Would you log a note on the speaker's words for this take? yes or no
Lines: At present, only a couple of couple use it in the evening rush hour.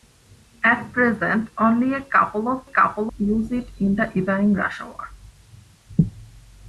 no